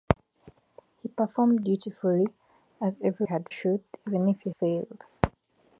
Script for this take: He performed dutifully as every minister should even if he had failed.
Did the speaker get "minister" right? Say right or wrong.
wrong